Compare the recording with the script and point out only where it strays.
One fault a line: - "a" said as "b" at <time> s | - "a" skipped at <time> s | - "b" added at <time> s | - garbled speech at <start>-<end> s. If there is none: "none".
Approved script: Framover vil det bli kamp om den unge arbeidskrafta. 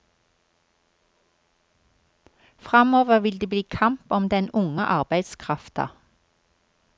none